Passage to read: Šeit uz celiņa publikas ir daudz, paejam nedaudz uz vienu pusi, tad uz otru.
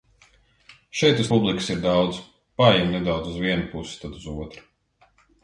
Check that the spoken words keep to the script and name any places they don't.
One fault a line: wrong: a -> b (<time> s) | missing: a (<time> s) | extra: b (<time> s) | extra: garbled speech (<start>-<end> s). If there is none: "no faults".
missing: celiņa (1.3 s)